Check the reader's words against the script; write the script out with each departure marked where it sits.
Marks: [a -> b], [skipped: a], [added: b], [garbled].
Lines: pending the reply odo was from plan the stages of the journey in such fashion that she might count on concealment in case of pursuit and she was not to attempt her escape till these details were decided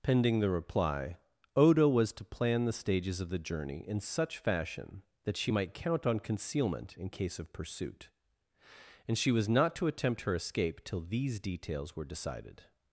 pending the reply odo was [from -> to] plan the stages of the journey in such fashion that she might count on concealment in case of pursuit and she was not to attempt her escape till these details were decided